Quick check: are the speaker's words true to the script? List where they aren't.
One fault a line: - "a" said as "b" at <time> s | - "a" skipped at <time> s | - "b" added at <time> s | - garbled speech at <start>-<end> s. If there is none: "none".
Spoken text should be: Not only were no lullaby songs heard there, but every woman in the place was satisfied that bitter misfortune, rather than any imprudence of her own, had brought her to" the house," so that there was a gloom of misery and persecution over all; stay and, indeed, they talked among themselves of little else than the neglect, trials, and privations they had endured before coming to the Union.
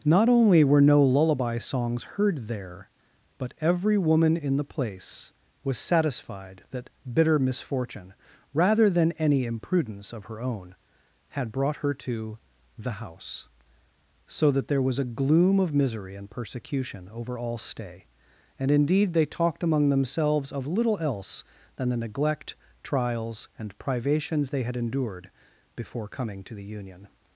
none